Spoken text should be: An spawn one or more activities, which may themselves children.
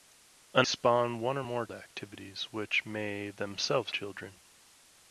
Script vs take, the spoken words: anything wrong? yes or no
no